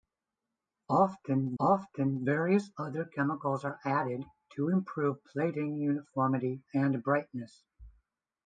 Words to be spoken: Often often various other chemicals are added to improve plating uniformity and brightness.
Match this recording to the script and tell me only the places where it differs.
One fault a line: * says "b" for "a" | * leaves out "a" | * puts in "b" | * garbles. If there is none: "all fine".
all fine